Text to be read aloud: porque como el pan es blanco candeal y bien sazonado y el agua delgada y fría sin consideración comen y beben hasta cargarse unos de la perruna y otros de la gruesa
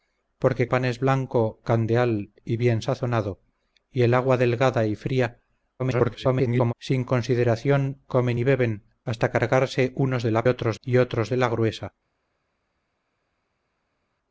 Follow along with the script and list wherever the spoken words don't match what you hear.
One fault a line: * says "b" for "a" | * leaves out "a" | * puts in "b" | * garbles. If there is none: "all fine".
* leaves out "como el"
* garbles
* says "otros" for "perruna"